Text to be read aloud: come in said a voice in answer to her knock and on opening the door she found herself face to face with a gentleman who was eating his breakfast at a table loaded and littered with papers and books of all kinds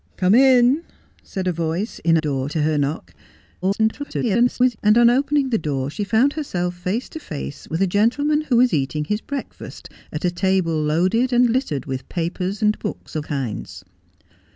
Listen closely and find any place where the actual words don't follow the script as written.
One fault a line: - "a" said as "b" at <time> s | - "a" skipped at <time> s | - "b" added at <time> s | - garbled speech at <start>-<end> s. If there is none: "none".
- "answer" said as "door" at 2.2 s
- garbled speech at 3.6-4.8 s
- "all" skipped at 13.3 s